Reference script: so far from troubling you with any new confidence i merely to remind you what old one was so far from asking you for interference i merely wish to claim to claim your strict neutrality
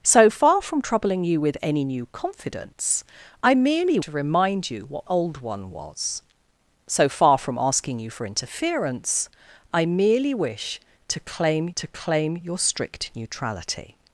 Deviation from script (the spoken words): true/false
false